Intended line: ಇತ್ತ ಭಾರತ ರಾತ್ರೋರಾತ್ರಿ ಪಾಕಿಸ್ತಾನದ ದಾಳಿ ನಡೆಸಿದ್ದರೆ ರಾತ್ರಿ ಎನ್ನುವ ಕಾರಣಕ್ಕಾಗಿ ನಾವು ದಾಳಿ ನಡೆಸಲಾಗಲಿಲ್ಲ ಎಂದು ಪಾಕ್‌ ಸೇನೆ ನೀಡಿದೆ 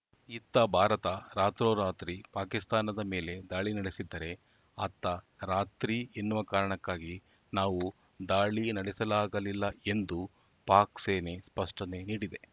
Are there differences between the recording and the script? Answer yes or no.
yes